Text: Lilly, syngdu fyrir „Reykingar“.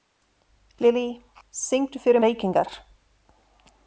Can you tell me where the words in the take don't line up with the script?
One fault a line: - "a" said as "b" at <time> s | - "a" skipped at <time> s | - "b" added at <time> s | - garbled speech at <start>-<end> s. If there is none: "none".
none